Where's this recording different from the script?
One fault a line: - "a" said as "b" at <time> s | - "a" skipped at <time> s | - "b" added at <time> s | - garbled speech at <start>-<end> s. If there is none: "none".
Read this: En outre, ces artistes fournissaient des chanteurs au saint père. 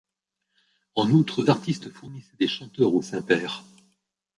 - "ces" skipped at 1.4 s